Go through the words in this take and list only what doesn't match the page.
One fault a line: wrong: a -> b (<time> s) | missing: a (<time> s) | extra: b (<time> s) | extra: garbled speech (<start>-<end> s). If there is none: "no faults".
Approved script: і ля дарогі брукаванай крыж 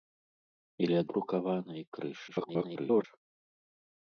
missing: дарогі (1.0 s)
extra: garbled speech (2.3-3.0 s)